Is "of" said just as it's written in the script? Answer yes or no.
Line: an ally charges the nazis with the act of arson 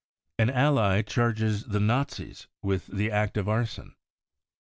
yes